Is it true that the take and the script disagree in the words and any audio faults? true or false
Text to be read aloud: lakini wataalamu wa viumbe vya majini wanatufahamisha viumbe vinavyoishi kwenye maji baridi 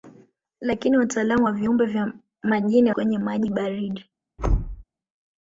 true